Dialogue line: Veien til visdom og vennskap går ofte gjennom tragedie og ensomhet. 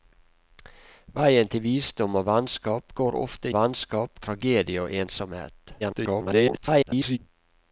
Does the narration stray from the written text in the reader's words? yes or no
yes